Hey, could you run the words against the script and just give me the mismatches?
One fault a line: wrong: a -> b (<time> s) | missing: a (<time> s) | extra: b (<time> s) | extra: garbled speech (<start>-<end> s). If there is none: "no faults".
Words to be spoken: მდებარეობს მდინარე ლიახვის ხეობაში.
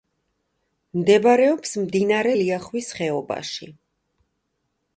no faults